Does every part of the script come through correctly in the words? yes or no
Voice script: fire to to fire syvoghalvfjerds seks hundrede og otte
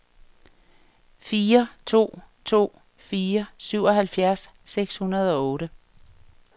yes